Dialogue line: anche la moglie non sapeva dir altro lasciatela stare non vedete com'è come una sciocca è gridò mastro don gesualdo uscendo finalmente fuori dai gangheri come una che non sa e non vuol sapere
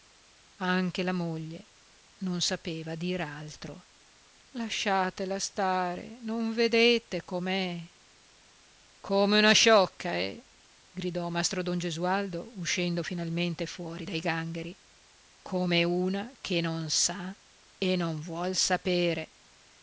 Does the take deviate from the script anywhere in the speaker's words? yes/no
no